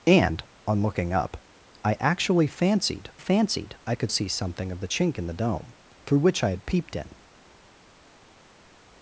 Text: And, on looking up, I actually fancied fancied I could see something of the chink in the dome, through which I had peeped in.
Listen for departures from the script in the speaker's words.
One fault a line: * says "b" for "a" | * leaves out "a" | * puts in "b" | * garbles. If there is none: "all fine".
all fine